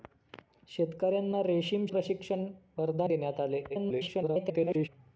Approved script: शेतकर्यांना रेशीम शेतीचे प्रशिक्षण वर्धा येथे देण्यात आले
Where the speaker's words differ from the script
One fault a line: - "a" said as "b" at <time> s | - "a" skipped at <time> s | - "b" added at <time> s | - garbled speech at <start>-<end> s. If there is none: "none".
- "शेतीचे" skipped at 1.9 s
- "येथे" skipped at 3.1 s
- garbled speech at 3.7-4.9 s